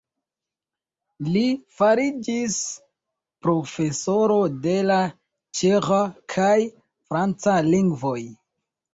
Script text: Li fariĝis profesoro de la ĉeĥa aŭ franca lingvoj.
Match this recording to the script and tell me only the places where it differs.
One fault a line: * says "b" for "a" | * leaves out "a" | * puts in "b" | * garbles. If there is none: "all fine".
* says "kaj" for "aŭ"